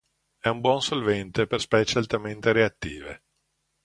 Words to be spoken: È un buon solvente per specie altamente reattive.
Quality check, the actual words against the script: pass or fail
pass